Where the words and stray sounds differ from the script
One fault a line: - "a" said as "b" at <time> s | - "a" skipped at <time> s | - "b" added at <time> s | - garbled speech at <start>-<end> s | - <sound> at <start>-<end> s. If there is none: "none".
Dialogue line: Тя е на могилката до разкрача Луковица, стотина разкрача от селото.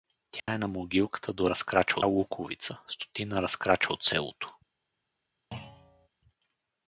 - dropout at 0.4-0.5 s
- thud at 5.5-6.1 s